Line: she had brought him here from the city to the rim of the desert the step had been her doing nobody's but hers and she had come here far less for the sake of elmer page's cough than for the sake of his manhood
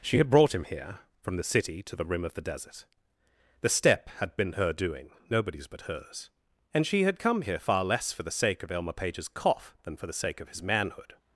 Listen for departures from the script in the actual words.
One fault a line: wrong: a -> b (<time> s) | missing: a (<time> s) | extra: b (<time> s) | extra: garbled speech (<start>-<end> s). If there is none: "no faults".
no faults